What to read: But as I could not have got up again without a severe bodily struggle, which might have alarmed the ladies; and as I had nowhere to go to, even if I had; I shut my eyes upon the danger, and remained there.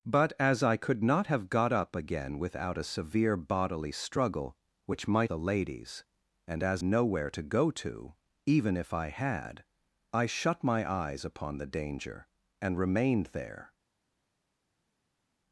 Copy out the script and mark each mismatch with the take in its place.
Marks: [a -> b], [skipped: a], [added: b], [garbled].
But as I could not have got up again without a severe bodily struggle, which might [skipped: have alarmed] the ladies; and as [skipped: I had] nowhere to go to, even if I had; I shut my eyes upon the danger, and remained there.